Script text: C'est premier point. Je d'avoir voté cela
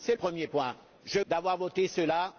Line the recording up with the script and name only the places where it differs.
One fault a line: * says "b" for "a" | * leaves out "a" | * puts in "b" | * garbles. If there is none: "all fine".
all fine